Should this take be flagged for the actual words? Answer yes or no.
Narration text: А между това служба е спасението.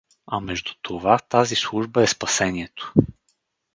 yes